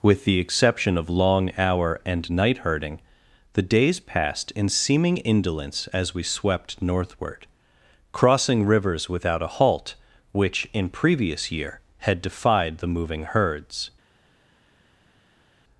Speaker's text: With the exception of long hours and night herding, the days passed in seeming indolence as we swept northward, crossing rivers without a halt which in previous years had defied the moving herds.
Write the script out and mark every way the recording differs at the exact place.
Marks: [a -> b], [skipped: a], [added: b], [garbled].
With the exception of long [hours -> hour] and night herding, the days passed in seeming indolence as we swept northward, crossing rivers without a halt which in previous [years -> year] had defied the moving herds.